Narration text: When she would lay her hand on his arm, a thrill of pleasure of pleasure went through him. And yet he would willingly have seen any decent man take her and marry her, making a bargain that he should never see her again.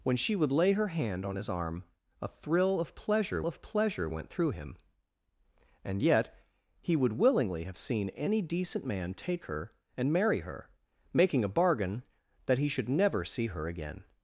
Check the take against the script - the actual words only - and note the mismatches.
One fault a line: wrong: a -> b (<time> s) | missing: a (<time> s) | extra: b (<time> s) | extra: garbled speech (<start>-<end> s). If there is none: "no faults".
no faults